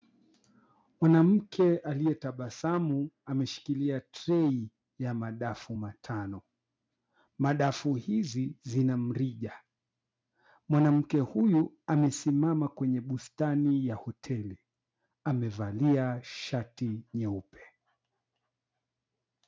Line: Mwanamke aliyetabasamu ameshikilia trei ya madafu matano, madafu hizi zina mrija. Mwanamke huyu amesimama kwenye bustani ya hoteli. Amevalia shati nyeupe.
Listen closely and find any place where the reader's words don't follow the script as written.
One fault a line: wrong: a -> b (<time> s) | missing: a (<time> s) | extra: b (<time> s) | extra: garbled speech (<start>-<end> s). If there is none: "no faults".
no faults